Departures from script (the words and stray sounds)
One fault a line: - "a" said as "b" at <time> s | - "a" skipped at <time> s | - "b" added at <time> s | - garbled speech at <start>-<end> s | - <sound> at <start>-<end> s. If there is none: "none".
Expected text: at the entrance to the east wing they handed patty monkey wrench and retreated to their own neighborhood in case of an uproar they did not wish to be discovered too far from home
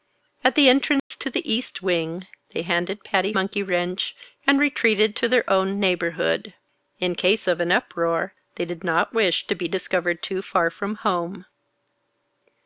- dropout at 1.0-1.1 s